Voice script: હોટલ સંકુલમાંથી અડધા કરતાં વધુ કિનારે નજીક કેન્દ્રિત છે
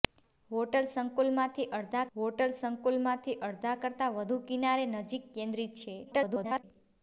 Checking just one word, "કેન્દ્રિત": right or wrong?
right